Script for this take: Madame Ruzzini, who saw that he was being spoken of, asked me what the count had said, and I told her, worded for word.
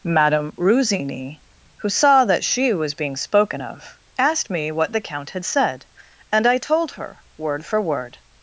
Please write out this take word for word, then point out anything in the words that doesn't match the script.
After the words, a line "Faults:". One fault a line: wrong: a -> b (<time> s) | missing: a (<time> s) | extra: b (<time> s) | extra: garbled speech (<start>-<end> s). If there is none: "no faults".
Madame Ruzzini, who saw that she was being spoken of, asked me what the count had said, and I told her, word for word.
Faults:
wrong: he -> she (2.4 s)
wrong: worded -> word (7.4 s)